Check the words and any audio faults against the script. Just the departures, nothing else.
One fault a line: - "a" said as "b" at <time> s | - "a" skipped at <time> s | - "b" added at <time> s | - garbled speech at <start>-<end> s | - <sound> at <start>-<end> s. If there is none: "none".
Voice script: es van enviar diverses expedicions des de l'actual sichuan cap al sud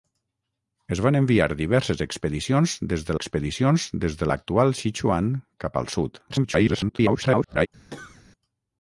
- "expedicions des de" added at 3.2 s
- garbled speech at 6.3-7.7 s
- cough at 7.9-8.2 s